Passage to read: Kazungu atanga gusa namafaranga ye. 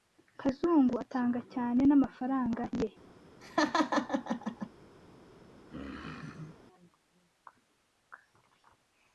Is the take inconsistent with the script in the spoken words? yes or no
yes